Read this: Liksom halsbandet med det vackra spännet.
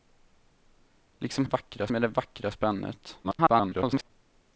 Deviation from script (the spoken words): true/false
true